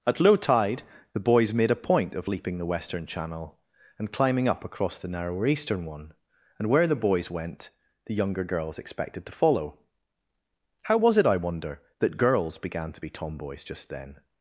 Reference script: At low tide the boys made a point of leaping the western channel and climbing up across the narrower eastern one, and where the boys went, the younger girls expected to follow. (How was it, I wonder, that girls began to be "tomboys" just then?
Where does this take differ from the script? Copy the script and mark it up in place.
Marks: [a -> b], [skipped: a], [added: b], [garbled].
At low tide the boys made a point of leaping the western channel and climbing up across the narrower eastern one, and where the boys went, the younger girls expected to follow. (How was it, I wonder, that girls began to be "tomboys" just then?